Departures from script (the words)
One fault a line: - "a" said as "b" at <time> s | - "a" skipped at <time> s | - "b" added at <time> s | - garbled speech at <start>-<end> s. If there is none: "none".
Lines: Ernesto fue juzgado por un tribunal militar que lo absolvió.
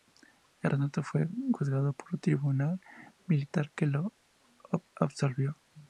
none